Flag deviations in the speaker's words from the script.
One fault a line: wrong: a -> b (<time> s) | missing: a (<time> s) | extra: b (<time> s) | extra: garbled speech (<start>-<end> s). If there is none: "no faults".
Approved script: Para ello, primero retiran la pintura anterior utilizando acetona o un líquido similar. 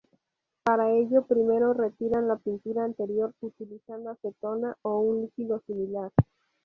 no faults